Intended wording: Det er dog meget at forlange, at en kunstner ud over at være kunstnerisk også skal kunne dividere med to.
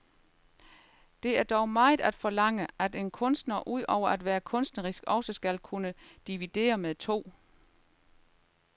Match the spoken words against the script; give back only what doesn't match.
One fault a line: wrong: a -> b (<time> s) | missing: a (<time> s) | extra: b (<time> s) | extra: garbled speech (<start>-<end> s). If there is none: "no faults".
no faults